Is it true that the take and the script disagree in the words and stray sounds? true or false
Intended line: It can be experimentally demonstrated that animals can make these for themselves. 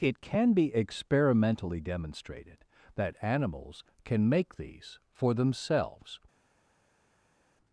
false